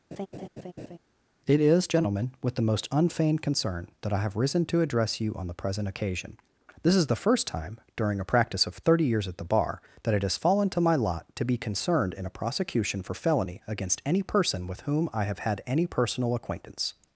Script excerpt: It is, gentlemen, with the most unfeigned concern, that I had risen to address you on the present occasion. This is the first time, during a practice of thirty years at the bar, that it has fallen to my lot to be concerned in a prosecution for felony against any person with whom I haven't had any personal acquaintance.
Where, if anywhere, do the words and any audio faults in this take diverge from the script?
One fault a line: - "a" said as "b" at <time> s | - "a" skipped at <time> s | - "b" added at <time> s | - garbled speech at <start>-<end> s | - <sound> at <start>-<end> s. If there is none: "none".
- laugh at 0.1-1.0 s
- "had" said as "have" at 4.2 s
- "haven't" said as "have" at 15.2 s